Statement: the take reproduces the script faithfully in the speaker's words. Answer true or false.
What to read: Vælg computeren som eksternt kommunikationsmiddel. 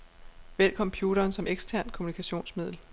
true